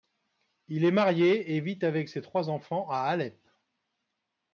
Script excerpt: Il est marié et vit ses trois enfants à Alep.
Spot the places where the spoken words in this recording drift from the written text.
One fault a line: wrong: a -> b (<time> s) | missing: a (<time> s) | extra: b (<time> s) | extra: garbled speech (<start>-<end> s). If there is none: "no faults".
extra: avec (1.8 s)